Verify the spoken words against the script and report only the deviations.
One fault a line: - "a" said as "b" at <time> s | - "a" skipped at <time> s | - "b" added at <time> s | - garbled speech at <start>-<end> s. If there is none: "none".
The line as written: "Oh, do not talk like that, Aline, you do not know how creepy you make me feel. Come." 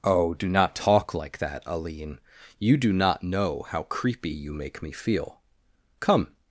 none